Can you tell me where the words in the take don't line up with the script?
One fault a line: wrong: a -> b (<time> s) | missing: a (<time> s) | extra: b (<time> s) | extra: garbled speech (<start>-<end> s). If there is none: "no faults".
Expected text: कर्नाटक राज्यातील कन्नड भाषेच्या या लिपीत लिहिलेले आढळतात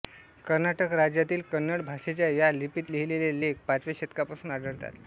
extra: लेख पाचव्या शतकापासून (3.4 s)